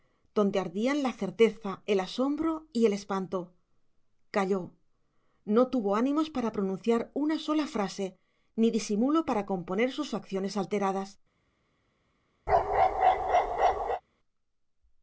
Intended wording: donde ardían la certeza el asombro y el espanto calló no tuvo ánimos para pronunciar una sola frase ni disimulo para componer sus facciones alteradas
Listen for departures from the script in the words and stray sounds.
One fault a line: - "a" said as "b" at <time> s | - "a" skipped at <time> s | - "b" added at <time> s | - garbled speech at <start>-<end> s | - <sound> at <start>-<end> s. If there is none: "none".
- bark at 12.5-14.0 s